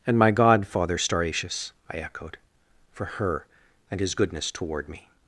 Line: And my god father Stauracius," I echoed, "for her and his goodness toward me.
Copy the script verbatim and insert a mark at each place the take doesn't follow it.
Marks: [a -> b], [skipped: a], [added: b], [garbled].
And my god father Stauracius," I echoed, "for her and his goodness toward me.